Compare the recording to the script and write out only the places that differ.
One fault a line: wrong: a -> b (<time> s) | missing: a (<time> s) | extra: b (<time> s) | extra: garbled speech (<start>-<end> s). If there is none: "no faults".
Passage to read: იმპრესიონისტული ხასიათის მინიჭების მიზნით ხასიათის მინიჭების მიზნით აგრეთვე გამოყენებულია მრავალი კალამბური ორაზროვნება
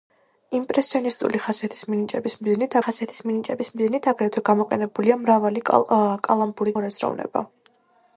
no faults